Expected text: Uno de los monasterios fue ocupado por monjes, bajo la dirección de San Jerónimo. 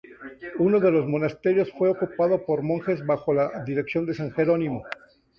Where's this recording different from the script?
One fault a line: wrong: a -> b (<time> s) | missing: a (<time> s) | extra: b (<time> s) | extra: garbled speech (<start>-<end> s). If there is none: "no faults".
no faults